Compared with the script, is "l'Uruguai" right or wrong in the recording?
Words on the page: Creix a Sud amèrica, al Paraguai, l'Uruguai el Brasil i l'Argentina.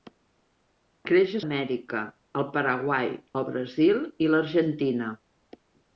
wrong